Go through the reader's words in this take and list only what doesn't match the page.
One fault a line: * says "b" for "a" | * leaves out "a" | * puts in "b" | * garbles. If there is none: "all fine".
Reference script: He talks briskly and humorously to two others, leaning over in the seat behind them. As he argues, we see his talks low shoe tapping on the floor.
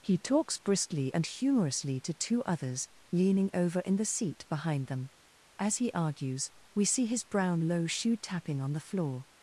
* says "brown" for "talks"